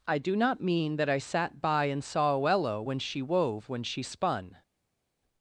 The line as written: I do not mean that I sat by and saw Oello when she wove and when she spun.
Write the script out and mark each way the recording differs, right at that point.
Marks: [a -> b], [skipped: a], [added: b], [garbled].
I do not mean that I sat by and saw Oello when she wove [skipped: and] when she spun.